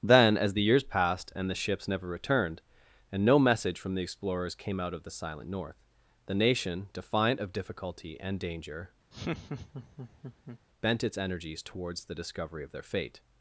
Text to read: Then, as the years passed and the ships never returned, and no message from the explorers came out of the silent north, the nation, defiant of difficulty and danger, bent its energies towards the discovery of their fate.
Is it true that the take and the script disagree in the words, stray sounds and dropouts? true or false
true